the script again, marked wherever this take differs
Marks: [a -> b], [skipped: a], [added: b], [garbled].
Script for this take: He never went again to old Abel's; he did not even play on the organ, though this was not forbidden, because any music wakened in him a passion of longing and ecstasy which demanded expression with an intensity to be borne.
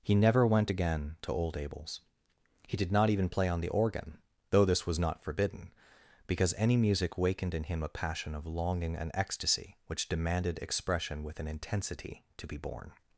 He never went again to old Abel's; he did not even play on the organ, though this was not forbidden, because any music wakened in him a passion of longing and ecstasy which demanded expression with an intensity to be borne.